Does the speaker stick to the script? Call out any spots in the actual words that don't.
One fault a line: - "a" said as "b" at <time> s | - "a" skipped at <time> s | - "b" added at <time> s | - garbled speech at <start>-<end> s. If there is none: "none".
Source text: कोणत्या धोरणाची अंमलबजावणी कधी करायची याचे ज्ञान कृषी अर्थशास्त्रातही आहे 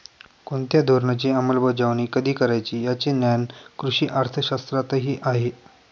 none